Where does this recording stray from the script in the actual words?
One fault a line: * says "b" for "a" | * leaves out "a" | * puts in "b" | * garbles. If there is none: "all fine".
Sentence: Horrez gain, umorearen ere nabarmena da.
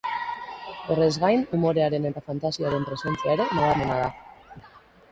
* puts in "eta fantasiaren presentzia"